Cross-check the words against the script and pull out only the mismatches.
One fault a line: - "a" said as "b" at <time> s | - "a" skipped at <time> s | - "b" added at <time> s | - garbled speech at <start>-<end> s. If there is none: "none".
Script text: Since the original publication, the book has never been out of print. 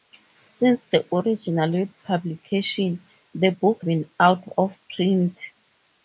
- "has never" skipped at 3.8 s